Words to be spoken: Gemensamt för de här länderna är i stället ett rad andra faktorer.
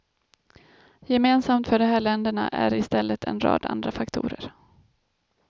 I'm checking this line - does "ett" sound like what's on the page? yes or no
no